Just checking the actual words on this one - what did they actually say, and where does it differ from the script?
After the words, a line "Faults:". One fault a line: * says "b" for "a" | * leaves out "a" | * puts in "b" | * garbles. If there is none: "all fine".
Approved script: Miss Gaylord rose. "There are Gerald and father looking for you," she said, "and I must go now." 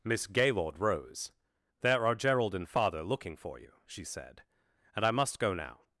Miss Gaylord rose. "There are Gerald and father looking for you," she said, "and I must go now."
Faults:
all fine